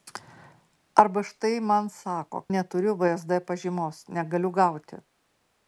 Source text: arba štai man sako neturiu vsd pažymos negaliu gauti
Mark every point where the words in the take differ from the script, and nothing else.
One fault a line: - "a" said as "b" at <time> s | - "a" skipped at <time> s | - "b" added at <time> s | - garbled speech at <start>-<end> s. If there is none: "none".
none